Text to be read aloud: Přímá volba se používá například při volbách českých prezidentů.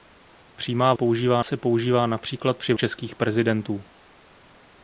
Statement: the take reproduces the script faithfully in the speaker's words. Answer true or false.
false